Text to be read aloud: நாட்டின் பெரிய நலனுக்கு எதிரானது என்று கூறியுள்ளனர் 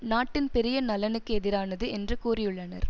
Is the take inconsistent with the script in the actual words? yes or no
no